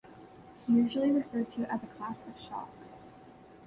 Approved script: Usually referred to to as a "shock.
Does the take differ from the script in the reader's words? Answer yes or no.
yes